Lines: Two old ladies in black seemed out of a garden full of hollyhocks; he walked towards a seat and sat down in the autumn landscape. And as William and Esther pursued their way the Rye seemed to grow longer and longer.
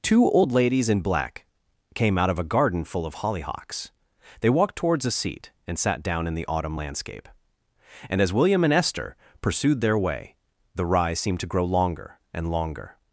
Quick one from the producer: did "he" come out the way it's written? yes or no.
no